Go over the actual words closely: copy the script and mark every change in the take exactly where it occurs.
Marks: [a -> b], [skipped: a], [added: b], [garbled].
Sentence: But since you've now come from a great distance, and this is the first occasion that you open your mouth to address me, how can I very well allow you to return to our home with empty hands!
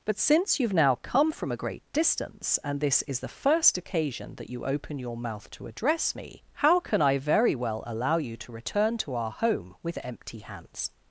But since you've now come from a great distance, and this is the first occasion that you open your mouth to address me, how can I very well allow you to return to our home with empty hands!